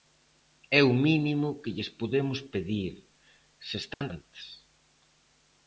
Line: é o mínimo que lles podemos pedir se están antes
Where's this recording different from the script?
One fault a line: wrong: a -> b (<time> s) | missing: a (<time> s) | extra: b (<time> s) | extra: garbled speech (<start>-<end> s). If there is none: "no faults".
no faults